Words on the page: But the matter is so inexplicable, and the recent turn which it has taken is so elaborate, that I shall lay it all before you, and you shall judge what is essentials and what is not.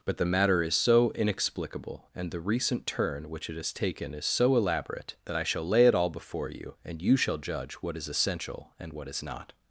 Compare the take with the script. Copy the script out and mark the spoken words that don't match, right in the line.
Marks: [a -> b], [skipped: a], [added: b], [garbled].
But the matter is so inexplicable, and the recent turn which it has taken is so elaborate, that I shall lay it all before you, and you shall judge what is [essentials -> essential] and what is not.